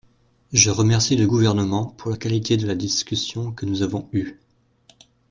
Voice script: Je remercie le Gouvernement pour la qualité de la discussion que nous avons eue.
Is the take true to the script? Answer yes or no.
yes